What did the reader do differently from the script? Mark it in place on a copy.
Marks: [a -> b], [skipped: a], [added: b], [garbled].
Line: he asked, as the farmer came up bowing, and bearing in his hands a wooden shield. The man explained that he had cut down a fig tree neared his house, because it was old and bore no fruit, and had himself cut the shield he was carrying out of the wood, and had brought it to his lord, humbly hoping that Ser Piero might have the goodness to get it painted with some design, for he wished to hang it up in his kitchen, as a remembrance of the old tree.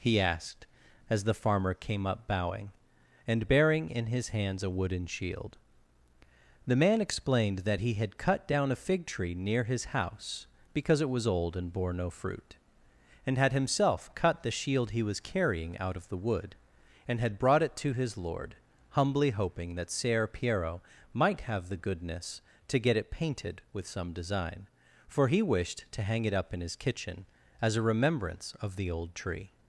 he asked, as the farmer came up bowing, and bearing in his hands a wooden shield. The man explained that he had cut down a fig tree [neared -> near] his house, because it was old and bore no fruit, and had himself cut the shield he was carrying out of the wood, and had brought it to his lord, humbly hoping that Ser Piero might have the goodness to get it painted with some design, for he wished to hang it up in his kitchen, as a remembrance of the old tree.